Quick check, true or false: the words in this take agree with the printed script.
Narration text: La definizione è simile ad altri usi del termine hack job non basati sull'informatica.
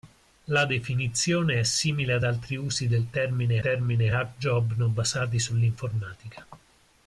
false